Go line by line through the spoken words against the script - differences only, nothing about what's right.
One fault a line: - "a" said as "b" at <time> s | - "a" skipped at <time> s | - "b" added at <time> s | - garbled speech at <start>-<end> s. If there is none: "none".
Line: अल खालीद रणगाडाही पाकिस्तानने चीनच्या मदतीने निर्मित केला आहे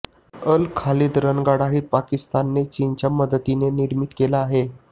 none